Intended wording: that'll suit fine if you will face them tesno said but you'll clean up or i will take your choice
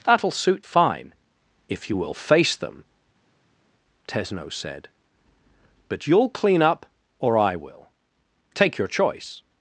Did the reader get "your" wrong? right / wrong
right